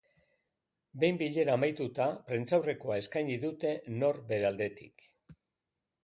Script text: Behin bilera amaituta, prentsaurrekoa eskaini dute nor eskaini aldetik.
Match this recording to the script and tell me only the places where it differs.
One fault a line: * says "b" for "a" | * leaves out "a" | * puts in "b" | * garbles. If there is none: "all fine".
* says "bere" for "eskaini"